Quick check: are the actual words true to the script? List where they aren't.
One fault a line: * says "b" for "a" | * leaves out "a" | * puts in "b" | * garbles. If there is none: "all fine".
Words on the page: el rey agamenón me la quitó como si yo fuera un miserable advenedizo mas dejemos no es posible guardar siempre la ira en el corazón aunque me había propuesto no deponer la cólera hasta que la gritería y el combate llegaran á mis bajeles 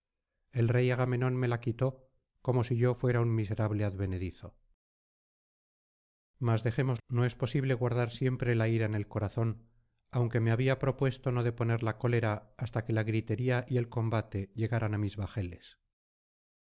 all fine